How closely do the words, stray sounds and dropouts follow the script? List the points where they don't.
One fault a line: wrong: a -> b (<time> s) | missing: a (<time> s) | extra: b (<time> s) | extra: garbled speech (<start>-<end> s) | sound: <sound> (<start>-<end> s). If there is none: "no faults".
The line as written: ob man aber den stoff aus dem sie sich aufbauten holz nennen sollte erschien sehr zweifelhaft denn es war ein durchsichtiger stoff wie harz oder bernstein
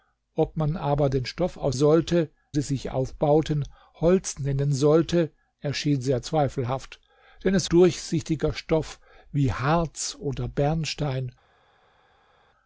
wrong: dem -> sollte (1.7 s)
missing: war ein (7.7 s)